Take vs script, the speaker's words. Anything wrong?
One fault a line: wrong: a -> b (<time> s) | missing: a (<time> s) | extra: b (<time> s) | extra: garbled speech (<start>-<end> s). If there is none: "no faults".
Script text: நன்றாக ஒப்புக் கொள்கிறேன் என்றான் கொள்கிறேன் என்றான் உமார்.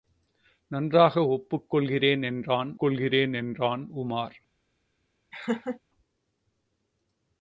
no faults